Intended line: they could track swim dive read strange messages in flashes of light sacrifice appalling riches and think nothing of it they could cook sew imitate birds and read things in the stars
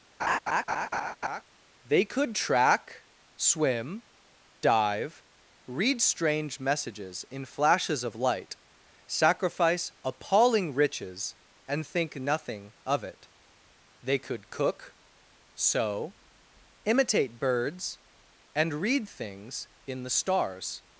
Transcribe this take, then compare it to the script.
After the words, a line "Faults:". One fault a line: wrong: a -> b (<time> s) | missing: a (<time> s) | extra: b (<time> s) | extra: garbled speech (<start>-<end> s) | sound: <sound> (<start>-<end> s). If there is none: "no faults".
they could track swim dive read strange messages in flashes of light sacrifice appalling riches and think nothing of it they could cook sew imitate birds and read things in the stars
Faults:
sound: laugh (0.2-1.4 s)